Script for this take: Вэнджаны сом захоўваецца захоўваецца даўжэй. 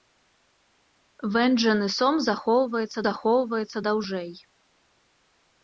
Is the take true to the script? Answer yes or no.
yes